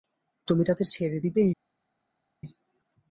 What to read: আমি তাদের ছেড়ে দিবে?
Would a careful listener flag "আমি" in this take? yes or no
yes